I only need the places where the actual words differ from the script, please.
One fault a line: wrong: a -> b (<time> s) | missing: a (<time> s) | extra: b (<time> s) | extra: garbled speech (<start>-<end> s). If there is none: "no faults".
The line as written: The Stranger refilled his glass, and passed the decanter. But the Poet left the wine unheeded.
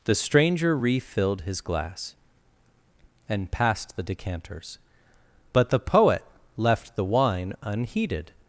wrong: decanter -> decanters (4.0 s)